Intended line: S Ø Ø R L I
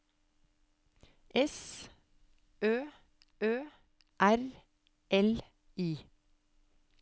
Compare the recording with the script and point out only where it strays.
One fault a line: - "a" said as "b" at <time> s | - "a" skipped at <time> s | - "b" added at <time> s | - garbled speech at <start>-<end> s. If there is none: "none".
none